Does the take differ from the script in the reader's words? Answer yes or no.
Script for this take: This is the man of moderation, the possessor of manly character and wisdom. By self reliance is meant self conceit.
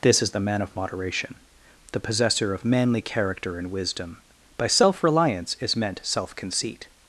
no